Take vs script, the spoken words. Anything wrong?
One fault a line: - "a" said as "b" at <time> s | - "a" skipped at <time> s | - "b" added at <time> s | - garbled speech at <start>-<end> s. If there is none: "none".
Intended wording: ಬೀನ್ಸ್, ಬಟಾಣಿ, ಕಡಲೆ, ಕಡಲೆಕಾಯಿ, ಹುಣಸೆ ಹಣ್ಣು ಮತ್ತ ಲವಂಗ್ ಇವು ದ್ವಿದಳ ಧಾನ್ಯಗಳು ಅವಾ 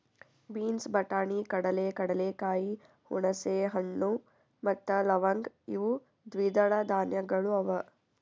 none